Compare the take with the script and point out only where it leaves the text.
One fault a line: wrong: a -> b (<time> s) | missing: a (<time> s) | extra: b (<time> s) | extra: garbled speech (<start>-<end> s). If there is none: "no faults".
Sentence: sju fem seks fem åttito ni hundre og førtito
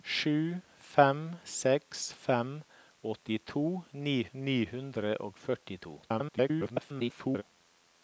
extra: ni (4.3 s)
extra: garbled speech (6.0-7.4 s)